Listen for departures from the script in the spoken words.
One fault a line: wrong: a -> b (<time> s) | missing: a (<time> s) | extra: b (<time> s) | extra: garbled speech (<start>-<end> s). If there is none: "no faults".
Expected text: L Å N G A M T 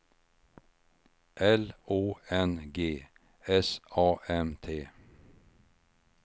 extra: S (3.5 s)